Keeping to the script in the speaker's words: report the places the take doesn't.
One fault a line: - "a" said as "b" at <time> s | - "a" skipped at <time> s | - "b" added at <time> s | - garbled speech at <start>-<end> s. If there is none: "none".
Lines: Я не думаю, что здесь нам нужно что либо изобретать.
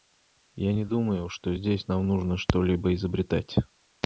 none